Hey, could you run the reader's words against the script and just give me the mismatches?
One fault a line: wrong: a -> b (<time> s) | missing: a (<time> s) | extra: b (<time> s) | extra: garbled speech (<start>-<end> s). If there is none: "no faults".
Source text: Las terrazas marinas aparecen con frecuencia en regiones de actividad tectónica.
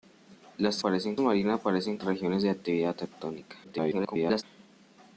wrong: terrazas -> aparecen (0.8 s)
missing: con frecuencia en (2.0 s)
extra: garbled speech (3.6-4.4 s)